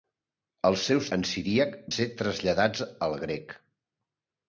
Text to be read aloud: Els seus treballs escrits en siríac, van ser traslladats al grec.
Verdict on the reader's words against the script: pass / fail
fail